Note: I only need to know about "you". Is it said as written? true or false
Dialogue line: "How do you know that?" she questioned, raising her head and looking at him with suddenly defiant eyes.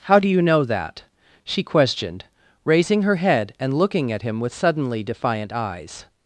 true